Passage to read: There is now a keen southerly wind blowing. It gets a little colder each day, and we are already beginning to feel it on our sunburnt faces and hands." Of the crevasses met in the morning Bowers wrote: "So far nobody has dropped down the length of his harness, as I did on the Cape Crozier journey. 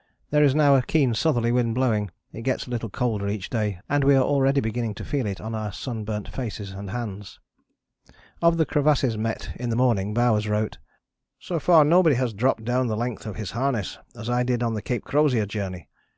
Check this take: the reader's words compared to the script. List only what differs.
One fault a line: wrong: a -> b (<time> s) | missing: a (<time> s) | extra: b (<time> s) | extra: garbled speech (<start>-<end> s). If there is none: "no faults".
no faults